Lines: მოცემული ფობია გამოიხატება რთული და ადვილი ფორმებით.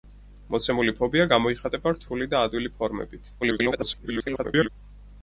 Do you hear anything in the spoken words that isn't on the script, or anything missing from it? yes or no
yes